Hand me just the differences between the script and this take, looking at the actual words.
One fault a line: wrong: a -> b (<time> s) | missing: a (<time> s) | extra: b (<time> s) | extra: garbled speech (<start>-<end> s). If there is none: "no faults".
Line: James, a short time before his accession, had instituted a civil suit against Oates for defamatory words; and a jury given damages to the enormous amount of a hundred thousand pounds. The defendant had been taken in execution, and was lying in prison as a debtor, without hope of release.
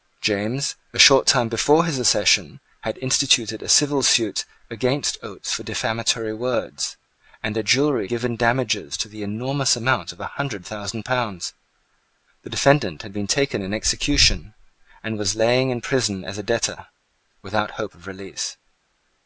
no faults